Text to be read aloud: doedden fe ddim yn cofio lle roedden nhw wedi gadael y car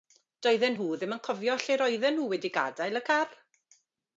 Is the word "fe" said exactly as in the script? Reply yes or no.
no